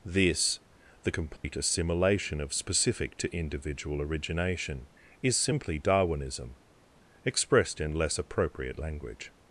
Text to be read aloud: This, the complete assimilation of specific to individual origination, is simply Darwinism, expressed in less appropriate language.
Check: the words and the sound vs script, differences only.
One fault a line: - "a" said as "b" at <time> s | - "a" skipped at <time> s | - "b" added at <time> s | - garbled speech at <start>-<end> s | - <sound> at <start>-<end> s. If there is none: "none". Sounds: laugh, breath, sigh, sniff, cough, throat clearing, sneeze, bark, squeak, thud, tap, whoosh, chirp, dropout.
- dropout at 1.4-1.4 s